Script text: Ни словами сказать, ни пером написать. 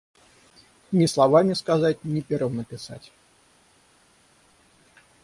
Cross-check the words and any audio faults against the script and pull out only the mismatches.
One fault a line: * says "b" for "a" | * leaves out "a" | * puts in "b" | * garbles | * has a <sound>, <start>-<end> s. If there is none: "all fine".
all fine